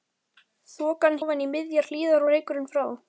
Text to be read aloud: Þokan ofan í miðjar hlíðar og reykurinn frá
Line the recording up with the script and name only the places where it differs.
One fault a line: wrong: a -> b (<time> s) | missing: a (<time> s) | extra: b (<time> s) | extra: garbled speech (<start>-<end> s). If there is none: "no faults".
no faults